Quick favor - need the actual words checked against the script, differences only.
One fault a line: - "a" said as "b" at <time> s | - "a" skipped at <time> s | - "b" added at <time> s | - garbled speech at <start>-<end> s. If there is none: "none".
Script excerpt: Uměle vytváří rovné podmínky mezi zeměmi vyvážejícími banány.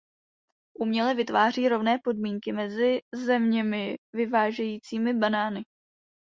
none